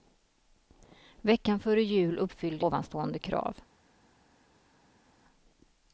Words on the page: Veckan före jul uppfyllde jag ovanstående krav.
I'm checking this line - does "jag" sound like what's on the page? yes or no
no